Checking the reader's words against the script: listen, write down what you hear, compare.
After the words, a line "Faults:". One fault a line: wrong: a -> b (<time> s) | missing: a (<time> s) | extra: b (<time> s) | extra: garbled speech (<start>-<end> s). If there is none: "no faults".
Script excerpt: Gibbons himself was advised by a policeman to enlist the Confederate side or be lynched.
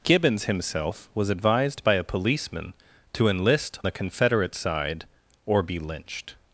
Gibbons himself was advised by a policeman to enlist the Confederate side or be lynched.
Faults:
no faults